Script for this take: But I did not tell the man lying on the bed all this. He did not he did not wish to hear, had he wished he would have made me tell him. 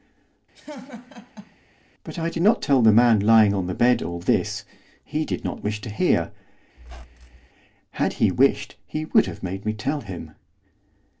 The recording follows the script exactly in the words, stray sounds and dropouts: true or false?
false